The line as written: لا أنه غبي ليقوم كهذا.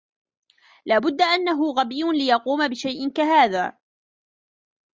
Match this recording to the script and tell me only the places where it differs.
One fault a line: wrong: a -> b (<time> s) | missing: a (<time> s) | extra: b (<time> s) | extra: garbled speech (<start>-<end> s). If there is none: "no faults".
extra: بد (1.0 s)
extra: بشيء (2.7 s)